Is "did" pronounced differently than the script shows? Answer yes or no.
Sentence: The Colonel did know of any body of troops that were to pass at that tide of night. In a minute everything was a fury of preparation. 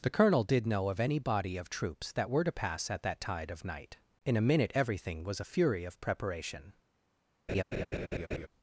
no